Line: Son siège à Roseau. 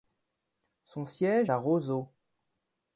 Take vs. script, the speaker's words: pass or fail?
pass